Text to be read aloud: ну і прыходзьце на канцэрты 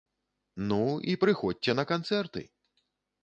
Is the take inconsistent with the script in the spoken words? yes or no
no